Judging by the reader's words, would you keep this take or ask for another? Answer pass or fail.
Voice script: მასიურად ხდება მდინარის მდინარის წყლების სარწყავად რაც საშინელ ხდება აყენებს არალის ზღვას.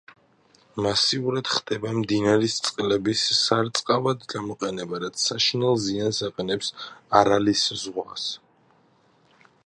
fail